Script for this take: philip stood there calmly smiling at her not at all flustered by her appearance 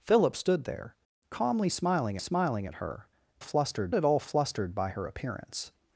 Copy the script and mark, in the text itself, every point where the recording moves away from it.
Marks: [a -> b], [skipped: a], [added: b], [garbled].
philip stood there calmly smiling [added: smiling] at her [not -> flustered] at all flustered by her appearance